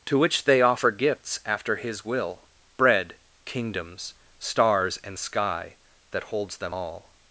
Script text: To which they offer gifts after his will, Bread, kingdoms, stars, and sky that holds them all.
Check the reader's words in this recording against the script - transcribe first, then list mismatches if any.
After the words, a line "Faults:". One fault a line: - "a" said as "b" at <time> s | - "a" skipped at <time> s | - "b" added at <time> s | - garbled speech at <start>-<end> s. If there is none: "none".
To which they offer gifts after his will, Bread, kingdoms, stars, and sky that holds them all.
Faults:
none